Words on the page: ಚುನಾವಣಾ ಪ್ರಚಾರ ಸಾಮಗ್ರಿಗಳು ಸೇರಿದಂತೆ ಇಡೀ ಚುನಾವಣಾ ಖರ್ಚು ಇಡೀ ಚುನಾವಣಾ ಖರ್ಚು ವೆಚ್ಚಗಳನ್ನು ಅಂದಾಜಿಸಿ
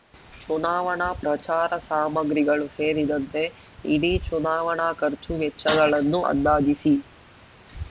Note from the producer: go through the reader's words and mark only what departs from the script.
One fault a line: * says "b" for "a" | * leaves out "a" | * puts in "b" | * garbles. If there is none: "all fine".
* leaves out "ಇಡೀ ಚುನಾವಣಾ ಖರ್ಚು"